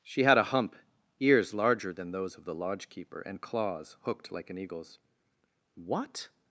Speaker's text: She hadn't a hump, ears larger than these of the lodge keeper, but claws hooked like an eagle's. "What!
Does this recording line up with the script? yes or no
no